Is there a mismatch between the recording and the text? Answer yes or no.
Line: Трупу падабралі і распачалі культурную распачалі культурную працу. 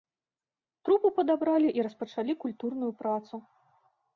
yes